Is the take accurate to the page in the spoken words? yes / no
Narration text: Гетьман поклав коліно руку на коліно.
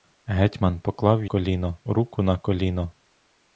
yes